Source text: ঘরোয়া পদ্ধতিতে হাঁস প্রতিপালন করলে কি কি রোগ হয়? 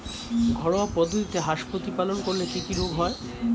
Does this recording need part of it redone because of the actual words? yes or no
no